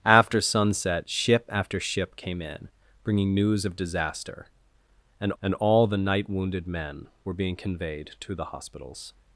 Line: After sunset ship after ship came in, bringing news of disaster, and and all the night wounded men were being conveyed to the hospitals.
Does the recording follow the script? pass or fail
pass